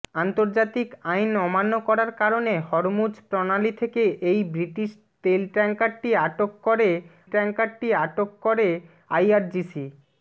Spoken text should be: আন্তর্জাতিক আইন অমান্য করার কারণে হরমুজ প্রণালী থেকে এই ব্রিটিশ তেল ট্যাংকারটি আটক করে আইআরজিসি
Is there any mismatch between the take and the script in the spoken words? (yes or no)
yes